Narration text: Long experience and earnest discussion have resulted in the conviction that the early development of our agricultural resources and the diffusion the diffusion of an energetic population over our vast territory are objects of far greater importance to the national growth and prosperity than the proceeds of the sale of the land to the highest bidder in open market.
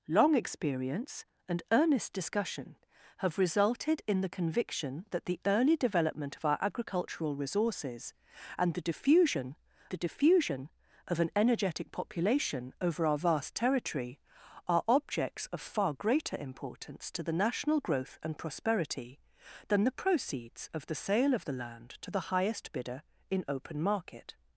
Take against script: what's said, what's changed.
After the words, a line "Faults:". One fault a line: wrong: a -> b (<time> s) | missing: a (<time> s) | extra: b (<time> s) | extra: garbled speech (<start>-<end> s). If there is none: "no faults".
Long experience and earnest discussion have resulted in the conviction that the early development of our agricultural resources and the diffusion the diffusion of an energetic population over our vast territory are objects of far greater importance to the national growth and prosperity than the proceeds of the sale of the land to the highest bidder in open market.
Faults:
no faults